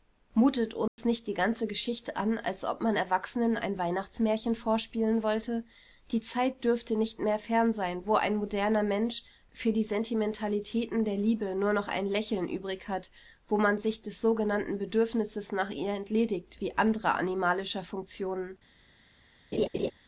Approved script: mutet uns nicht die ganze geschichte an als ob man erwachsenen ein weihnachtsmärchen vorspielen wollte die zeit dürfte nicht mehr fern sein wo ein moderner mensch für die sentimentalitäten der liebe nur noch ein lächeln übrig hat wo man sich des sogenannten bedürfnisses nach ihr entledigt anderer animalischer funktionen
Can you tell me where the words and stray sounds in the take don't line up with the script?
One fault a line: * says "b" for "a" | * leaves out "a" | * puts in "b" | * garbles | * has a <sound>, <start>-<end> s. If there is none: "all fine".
* has a dropout, 0.9-1.0 s
* puts in "wie"
* has a laugh, 19.5-19.9 s